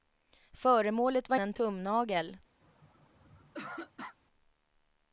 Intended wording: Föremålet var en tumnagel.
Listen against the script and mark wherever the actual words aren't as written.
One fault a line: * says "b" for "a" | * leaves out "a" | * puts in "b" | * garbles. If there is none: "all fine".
all fine